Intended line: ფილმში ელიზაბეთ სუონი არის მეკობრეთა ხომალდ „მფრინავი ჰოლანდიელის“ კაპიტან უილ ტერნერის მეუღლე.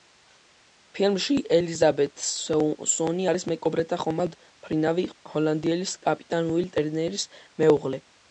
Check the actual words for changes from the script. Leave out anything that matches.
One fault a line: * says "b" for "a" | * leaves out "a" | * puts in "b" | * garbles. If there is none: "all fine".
all fine